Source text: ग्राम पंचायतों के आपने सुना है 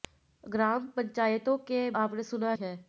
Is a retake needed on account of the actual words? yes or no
no